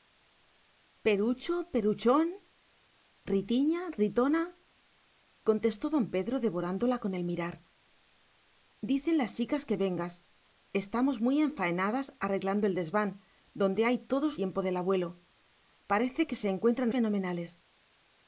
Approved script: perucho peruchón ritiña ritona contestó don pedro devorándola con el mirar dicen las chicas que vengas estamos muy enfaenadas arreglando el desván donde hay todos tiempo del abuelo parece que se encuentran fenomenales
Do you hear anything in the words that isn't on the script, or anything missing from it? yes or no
no